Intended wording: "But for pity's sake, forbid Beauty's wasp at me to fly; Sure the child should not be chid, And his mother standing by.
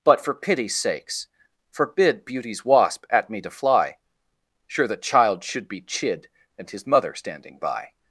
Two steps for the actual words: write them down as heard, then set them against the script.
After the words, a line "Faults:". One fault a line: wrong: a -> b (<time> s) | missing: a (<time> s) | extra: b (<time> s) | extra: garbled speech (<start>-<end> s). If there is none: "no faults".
"But for pity's sakes, forbid Beauty's wasp at me to fly; Sure the child should be chid, And his mother standing by.
Faults:
wrong: sake -> sakes (0.8 s)
missing: not (5.7 s)